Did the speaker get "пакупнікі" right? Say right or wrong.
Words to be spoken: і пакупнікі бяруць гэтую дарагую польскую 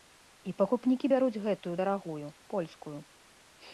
right